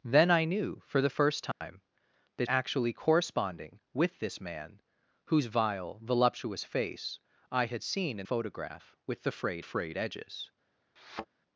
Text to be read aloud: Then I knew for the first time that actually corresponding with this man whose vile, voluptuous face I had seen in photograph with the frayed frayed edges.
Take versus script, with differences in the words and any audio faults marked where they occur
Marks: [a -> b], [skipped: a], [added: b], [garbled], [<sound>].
Then I knew for the first time [dropout] that actually corresponding with this man whose vile, voluptuous face I had seen in photograph with the frayed frayed edges. [thud]